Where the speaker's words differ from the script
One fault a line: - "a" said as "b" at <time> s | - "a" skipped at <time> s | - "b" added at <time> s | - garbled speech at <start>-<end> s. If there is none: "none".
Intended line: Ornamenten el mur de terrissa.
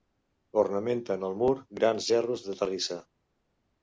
- "grans gerros" added at 1.8 s